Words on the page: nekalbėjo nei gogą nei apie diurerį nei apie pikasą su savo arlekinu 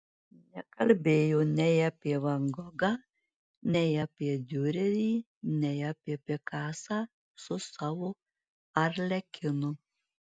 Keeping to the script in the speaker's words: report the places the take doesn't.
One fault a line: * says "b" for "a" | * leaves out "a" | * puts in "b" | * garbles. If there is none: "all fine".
* puts in "apie van"